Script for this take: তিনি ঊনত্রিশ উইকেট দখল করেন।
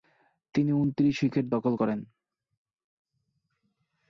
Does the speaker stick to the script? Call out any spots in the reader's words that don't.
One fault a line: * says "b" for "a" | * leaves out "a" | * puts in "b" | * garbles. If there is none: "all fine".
all fine